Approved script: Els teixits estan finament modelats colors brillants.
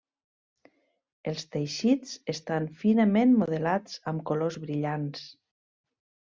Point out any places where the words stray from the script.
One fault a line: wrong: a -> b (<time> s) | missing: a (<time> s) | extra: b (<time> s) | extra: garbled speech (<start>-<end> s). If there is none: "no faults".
extra: amb (4.1 s)